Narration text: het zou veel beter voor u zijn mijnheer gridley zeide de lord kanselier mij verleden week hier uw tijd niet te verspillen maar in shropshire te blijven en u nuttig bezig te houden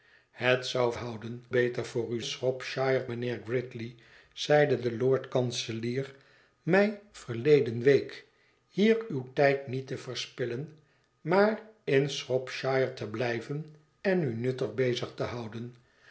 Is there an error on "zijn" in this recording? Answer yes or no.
yes